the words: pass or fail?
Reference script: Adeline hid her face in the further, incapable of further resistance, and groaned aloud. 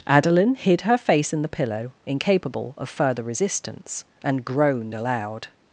fail